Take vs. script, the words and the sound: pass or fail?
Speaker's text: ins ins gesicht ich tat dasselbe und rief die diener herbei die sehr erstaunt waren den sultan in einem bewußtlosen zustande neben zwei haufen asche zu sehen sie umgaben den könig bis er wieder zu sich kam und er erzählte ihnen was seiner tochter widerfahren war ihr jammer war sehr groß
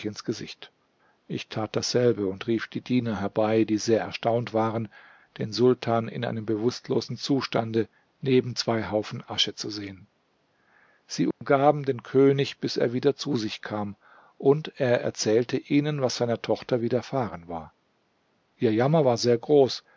fail